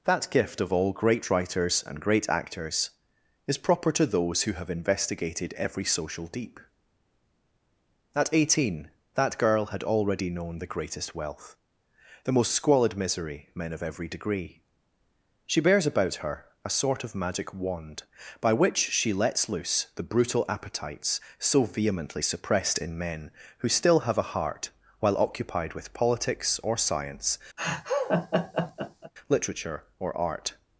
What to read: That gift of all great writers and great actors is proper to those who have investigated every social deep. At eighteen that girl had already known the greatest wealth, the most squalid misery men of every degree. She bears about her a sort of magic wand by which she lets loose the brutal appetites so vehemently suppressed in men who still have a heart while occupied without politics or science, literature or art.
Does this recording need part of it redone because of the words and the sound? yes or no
yes